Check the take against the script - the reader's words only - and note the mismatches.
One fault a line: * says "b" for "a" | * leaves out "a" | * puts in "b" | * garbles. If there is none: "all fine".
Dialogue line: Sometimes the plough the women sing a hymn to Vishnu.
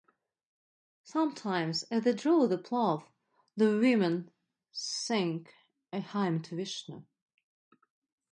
* puts in "as they draw"